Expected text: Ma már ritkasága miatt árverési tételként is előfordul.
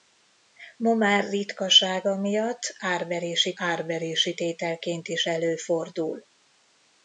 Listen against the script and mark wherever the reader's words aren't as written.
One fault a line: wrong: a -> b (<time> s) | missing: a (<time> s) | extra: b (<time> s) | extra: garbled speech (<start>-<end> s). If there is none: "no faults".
extra: árverési (3.5 s)